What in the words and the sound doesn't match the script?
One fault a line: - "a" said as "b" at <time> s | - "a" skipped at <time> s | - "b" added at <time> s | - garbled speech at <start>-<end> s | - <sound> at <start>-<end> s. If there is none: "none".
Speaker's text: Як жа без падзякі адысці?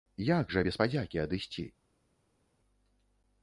none